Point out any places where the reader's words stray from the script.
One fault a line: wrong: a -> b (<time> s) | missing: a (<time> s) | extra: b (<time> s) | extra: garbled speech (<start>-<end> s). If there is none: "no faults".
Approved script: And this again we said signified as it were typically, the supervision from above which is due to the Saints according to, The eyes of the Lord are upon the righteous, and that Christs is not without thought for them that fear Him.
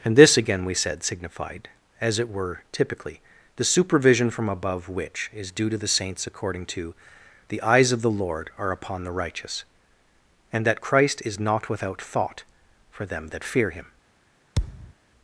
wrong: Christs -> Christ (10.8 s)